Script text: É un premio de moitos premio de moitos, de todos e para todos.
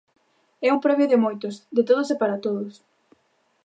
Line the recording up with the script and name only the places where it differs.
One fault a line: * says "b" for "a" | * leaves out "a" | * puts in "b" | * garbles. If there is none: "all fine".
* leaves out "premio de moitos"